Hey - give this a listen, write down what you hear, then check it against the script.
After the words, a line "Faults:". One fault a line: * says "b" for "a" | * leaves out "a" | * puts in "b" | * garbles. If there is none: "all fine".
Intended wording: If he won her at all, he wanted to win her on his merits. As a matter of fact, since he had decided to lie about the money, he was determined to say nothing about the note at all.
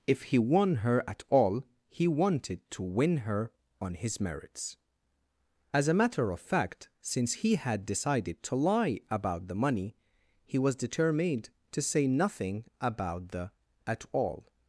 If he won her at all, he wanted to win her on his merits. As a matter of fact, since he had decided to lie about the money, he was determined to say nothing about the at all.
Faults:
* leaves out "note"